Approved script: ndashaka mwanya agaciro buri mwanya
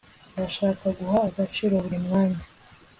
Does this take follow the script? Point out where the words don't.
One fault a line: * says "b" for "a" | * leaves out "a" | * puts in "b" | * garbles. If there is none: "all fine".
* says "guha" for "mwanya"